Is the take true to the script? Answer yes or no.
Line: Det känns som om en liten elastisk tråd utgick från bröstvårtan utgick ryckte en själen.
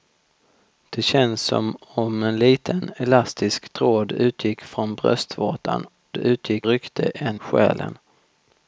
yes